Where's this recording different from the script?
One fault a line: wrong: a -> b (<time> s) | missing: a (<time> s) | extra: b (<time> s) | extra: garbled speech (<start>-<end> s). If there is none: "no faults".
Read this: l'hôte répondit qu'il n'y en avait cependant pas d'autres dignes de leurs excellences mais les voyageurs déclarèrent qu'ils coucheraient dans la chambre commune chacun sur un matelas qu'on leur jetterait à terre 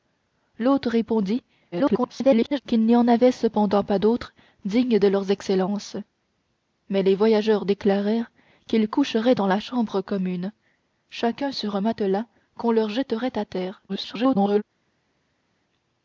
extra: garbled speech (1.7-2.6 s)
extra: garbled speech (13.9-14.6 s)